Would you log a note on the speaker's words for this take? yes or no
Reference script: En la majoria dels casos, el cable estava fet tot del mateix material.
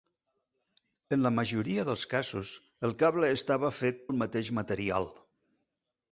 yes